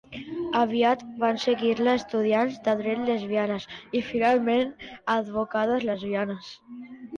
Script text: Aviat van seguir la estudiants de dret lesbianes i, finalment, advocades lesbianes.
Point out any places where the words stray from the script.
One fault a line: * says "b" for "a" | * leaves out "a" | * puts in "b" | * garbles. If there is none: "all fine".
all fine